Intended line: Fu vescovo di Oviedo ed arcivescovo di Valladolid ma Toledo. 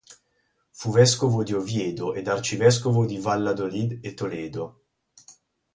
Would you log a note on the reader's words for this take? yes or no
yes